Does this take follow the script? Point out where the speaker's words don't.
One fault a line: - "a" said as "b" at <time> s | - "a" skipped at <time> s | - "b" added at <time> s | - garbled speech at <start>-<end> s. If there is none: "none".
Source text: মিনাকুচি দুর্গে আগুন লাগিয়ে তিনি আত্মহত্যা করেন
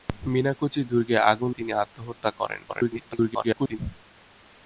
- "লাগিয়ে" skipped at 1.5 s
- garbled speech at 2.7-3.8 s